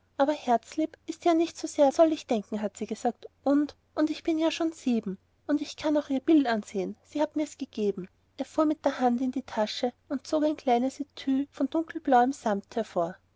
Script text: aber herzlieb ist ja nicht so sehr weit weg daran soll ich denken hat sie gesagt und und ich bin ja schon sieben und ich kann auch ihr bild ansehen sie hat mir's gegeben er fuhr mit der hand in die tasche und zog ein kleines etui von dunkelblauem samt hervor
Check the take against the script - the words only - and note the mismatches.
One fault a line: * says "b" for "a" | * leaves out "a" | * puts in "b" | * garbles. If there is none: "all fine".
* leaves out "weit weg daran"